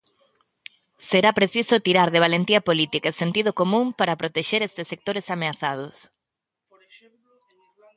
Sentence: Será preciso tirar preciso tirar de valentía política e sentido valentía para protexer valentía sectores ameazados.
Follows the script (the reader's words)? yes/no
no